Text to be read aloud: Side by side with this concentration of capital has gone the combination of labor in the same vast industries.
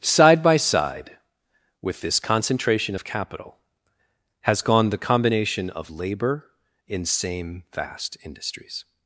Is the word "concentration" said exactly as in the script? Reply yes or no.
yes